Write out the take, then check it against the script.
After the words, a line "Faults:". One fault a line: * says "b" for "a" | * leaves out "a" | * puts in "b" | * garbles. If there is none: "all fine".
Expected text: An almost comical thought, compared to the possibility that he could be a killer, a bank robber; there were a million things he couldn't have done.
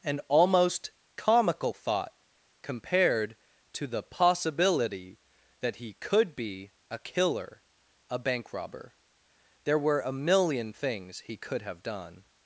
An almost comical thought, compared to the possibility that he could be a killer, a bank robber; there were a million things he could have done.
Faults:
* says "could" for "couldn't"